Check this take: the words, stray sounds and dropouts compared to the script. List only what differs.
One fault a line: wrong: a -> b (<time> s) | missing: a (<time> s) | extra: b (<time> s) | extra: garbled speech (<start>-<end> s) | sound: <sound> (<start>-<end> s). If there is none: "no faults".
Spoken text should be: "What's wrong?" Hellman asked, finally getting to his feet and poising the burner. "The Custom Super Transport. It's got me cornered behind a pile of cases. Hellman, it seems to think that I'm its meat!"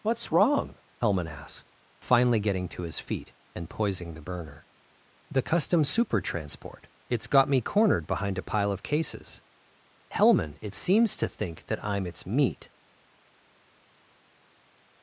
no faults